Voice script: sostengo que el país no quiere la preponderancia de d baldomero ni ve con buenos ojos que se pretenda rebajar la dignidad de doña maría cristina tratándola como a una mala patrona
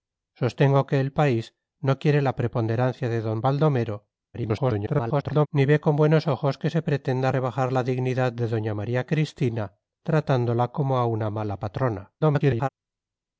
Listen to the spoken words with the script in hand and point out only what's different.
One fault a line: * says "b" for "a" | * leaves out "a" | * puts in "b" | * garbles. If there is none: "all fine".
* garbles
* garbles